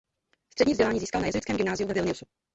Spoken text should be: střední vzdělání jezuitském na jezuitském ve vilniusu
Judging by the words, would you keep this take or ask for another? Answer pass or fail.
fail